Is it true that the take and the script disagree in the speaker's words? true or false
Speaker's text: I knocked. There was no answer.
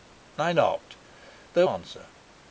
true